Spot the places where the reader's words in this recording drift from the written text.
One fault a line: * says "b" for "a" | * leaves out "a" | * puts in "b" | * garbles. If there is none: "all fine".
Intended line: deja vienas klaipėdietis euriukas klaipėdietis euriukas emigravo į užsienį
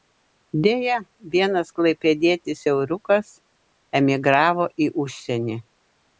* leaves out "klaipėdietis euriukas"